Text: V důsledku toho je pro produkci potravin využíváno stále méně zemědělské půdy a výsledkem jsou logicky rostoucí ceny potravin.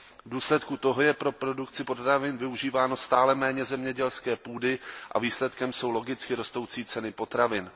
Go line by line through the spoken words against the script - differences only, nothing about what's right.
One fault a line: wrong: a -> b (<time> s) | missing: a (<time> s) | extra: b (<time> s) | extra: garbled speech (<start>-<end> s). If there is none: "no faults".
no faults